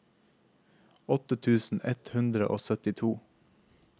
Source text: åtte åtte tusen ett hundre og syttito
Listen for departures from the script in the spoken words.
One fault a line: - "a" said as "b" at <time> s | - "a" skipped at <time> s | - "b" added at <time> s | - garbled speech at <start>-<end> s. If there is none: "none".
- "åtte" skipped at 1.4 s